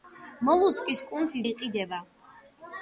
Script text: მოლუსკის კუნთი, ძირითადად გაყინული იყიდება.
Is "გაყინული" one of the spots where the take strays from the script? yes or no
yes